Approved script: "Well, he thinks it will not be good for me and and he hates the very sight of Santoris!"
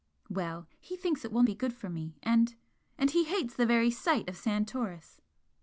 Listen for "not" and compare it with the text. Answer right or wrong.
wrong